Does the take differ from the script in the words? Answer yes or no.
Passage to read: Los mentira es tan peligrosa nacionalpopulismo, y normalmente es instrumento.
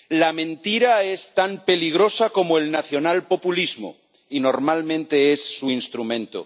yes